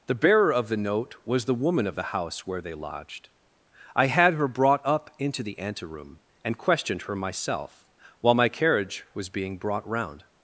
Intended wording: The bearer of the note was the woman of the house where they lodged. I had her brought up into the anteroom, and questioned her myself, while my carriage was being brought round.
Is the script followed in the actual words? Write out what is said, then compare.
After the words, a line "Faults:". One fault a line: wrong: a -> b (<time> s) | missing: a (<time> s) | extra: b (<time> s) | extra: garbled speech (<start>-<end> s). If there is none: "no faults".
The bearer of the note was the woman of the house where they lodged. I had her brought up into the anteroom, and questioned her myself, while my carriage was being brought round.
Faults:
no faults